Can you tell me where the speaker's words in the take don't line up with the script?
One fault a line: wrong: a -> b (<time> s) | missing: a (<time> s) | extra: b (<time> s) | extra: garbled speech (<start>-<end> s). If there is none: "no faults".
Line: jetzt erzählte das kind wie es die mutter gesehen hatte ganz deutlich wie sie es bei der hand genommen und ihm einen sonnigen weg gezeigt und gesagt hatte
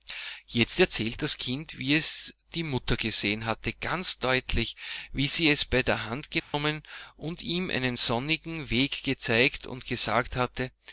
no faults